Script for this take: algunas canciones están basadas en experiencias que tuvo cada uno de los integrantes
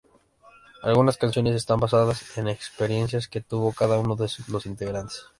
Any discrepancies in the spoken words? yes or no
no